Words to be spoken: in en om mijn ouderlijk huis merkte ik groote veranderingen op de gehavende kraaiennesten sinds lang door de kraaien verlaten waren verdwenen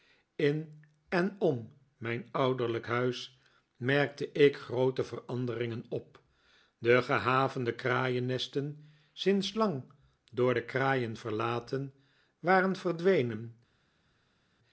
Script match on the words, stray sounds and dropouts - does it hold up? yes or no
yes